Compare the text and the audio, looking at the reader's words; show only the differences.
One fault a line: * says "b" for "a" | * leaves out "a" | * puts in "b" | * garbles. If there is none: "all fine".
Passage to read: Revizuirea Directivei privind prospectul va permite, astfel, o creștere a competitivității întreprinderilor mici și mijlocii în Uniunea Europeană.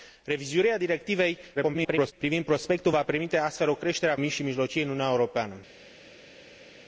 * garbles
* leaves out "competitivității întreprinderilor"